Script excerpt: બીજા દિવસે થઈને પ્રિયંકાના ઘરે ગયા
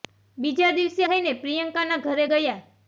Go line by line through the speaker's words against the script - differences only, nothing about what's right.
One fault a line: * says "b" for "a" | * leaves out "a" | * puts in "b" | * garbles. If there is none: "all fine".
all fine